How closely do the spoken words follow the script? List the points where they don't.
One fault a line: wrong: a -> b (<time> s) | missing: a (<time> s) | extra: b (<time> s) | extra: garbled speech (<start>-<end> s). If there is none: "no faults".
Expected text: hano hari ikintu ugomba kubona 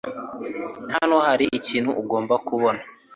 no faults